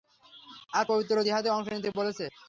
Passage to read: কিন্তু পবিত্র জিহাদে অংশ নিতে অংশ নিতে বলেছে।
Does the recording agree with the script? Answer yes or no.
no